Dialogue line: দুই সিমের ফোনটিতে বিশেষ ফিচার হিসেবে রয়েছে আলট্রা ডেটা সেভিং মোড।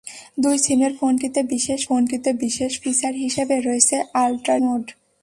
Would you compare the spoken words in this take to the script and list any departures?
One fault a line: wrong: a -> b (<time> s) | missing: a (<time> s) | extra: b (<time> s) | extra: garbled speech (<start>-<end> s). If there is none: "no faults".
extra: ফোনটিতে বিশেষ (1.9 s)
missing: ডেটা সেভিং (4.5 s)